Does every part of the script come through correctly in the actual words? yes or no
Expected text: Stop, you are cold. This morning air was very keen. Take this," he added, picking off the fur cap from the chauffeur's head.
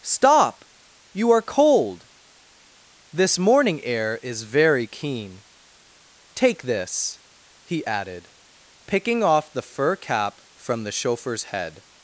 no